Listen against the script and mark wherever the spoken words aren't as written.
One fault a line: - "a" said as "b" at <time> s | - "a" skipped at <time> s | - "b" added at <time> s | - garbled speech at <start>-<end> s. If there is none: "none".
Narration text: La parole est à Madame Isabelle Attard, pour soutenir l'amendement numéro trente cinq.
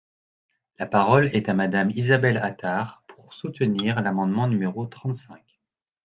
none